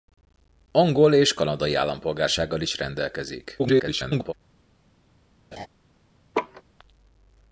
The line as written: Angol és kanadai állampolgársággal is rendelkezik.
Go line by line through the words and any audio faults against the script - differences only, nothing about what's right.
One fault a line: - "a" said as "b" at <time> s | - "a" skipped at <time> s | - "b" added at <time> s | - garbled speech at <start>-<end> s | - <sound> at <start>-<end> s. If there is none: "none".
- garbled speech at 3.6-4.3 s
- laugh at 5.5-5.7 s
- laugh at 6.3-6.6 s